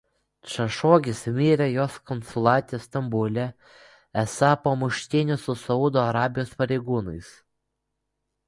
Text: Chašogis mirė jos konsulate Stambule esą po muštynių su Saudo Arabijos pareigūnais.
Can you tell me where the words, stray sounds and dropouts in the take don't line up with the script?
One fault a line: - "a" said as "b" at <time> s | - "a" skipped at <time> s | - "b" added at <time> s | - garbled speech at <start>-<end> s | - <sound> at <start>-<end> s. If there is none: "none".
none